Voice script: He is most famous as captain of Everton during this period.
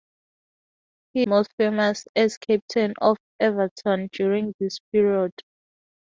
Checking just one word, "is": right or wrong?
wrong